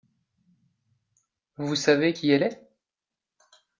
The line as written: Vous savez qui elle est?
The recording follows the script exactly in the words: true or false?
true